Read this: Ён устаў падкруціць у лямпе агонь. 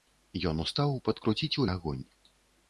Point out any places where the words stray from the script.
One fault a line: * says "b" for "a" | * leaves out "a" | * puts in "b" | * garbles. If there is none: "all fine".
* leaves out "лямпе"